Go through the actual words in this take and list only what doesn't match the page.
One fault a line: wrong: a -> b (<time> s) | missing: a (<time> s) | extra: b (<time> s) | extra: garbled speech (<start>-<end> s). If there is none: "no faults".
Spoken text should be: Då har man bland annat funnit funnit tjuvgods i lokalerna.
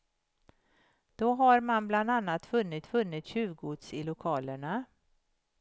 no faults